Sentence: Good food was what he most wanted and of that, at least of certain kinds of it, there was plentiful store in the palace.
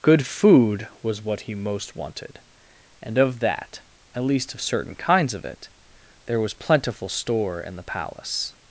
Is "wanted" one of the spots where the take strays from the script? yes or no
no